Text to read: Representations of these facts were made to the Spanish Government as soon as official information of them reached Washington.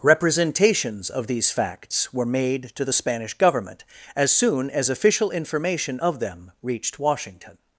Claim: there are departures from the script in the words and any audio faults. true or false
false